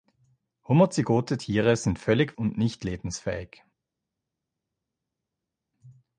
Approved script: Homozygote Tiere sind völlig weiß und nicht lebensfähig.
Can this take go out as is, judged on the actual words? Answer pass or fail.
fail